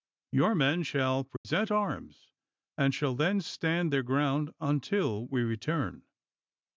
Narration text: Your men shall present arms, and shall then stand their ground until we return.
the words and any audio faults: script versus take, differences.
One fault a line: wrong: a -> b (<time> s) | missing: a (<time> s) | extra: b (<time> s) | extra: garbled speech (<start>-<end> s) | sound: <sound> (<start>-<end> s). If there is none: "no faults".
sound: dropout (1.4-1.4 s)